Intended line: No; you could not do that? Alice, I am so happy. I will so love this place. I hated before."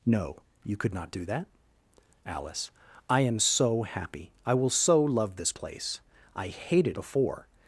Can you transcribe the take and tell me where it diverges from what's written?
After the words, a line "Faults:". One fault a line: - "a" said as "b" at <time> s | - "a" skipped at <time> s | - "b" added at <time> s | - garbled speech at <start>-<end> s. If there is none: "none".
No; you could not do that? Alice, I am so happy. I will so love this place. I hated before."
Faults:
none